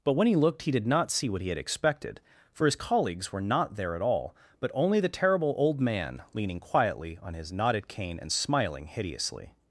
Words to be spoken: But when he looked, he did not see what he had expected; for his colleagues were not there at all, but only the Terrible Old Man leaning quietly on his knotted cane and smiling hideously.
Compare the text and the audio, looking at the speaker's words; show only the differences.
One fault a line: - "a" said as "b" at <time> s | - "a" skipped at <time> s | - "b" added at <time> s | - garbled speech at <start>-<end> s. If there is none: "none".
none